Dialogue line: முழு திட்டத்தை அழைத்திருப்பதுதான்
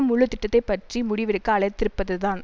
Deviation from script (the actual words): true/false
true